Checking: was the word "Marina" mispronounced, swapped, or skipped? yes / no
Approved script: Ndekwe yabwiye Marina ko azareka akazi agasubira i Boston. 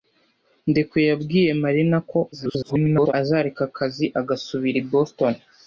no